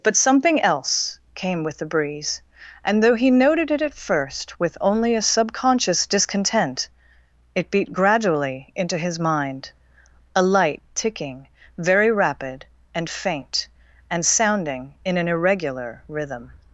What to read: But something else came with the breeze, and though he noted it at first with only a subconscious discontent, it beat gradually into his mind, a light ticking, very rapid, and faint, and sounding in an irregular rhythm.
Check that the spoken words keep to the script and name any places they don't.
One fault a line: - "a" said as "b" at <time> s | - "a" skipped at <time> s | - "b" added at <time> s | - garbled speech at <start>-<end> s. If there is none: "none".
none